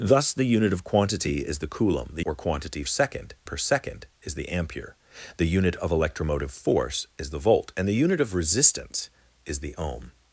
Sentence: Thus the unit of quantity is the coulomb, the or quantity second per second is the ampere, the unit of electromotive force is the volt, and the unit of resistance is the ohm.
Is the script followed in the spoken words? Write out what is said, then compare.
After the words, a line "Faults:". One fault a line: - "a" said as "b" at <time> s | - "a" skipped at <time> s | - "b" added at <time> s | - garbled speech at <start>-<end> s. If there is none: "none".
Thus the unit of quantity is the coulomb, the or quantity second per second is the ampere, the unit of electromotive force is the volt, and the unit of resistance is the ohm.
Faults:
none